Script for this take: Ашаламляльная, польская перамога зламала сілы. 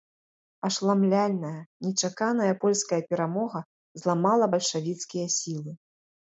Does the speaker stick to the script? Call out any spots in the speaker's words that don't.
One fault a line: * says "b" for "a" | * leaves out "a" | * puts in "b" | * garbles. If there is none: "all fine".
* puts in "нечаканая"
* puts in "бальшавіцкія"